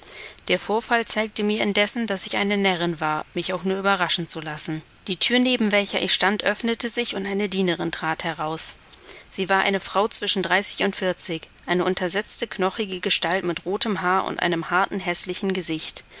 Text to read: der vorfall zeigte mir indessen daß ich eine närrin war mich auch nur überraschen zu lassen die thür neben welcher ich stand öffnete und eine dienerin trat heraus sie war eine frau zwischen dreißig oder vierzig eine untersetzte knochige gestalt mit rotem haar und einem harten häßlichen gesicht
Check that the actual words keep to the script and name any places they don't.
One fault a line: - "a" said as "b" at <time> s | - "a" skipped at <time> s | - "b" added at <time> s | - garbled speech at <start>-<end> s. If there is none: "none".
- "sich" added at 6.9 s
- "oder" said as "und" at 10.8 s